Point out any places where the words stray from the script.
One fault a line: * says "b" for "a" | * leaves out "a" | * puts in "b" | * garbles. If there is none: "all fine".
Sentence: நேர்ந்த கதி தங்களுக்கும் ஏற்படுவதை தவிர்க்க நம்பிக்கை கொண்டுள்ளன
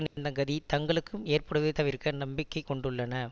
all fine